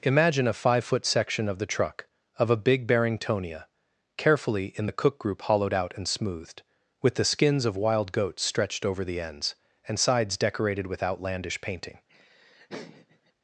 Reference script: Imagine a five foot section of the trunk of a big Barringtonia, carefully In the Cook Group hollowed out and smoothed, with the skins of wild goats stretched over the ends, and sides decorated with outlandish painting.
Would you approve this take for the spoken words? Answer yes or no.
no